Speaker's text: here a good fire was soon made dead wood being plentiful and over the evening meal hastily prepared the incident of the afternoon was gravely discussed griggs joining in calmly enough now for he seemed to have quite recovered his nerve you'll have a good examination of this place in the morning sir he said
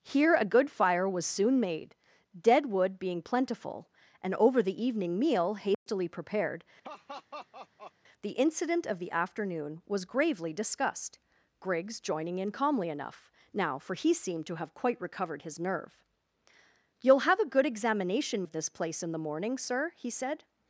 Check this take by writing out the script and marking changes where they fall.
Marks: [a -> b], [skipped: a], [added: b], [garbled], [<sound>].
here a good fire was soon made dead wood being plentiful and over the evening meal hastily [dropout] prepared [laugh] the incident of the afternoon was gravely discussed griggs joining in calmly enough now for he seemed to have quite recovered his nerve you'll have a good examination of this place in the morning sir he said